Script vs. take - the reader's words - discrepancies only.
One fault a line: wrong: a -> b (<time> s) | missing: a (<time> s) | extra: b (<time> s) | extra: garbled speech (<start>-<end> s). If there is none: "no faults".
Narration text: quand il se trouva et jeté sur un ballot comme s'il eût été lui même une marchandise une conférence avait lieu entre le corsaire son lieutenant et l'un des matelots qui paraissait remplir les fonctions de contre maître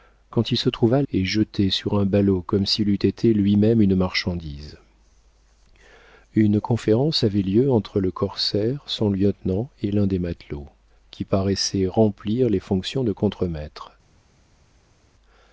no faults